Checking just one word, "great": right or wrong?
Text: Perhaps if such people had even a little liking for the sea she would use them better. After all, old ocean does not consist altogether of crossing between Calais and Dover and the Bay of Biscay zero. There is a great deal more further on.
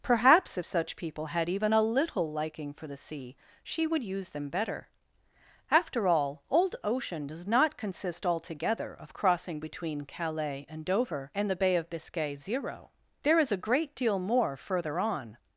right